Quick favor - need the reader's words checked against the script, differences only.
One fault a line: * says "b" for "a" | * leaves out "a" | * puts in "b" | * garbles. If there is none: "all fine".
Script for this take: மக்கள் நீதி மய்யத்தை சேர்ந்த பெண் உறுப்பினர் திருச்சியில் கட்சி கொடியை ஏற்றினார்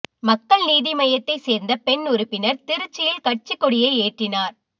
all fine